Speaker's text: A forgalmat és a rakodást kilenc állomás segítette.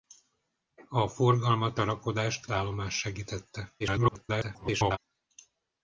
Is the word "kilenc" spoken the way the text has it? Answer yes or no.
no